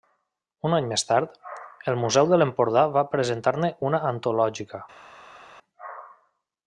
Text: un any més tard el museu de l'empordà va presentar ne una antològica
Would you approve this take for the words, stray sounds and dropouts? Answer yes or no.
yes